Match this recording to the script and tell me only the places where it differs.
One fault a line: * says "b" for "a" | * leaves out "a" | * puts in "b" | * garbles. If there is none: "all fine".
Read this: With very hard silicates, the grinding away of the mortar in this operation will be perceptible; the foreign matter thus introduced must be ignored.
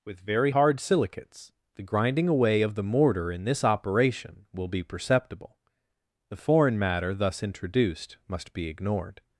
all fine